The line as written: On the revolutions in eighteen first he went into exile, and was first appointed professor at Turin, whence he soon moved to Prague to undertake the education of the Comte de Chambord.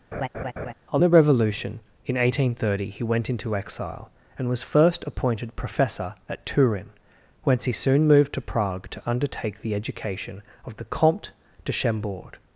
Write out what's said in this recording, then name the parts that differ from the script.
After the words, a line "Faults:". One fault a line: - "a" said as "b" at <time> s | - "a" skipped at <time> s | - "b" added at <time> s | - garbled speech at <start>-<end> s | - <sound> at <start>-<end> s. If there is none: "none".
On the revolution in eighteen thirty he went into exile, and was first appointed professor at Turin, whence he soon moved to Prague to undertake the education of the Comte de Chambord.
Faults:
- laugh at 0.1-0.7 s
- "revolutions" said as "revolution" at 1.1 s
- "first" said as "thirty" at 2.5 s